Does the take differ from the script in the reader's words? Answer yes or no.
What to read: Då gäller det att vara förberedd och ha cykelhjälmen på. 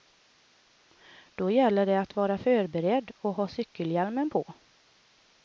no